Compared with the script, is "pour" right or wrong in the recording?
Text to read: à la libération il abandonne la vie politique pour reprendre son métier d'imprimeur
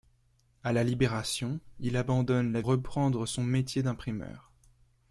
wrong